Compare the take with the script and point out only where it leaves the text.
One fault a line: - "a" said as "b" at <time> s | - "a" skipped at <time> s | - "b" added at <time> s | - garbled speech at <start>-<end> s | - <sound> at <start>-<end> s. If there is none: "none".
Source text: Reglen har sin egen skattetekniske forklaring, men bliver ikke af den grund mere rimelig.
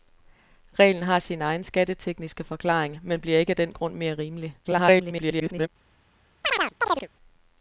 - garbled speech at 4.6-5.7 s
- chirp at 6.4-7.1 s